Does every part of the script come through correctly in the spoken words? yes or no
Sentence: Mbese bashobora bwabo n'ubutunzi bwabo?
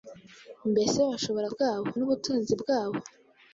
yes